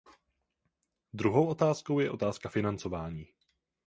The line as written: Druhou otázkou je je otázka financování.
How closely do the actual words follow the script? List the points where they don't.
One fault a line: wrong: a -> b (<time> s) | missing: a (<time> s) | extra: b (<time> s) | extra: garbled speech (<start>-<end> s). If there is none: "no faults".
missing: je (2.1 s)